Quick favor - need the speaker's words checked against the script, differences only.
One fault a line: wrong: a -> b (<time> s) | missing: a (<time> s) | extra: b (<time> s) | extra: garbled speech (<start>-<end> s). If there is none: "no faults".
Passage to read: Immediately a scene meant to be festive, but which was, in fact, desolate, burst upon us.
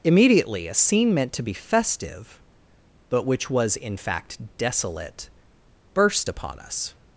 no faults